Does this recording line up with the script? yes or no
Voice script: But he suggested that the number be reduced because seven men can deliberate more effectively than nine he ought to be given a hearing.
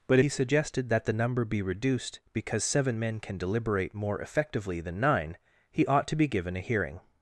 yes